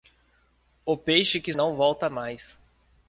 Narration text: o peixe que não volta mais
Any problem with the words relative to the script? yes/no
no